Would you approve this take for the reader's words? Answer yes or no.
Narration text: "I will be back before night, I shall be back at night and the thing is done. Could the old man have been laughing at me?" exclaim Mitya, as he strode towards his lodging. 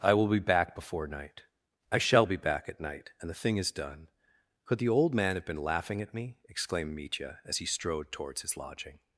no